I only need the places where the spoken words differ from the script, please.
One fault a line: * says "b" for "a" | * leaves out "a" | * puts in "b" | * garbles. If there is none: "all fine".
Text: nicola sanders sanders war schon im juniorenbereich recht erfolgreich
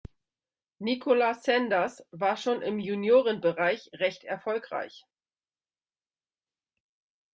* leaves out "sanders"